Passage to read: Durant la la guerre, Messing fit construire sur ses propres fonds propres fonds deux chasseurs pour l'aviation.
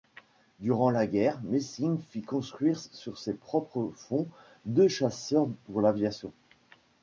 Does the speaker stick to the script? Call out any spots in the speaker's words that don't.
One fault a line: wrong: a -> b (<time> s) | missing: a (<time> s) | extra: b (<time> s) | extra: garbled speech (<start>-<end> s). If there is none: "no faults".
missing: la (1.1 s)
missing: propres fonds (4.2 s)